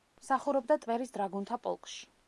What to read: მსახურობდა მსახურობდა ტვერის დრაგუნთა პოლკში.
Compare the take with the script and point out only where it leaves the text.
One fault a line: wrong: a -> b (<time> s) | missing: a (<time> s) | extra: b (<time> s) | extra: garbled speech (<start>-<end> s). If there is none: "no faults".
missing: მსახურობდა (0.8 s)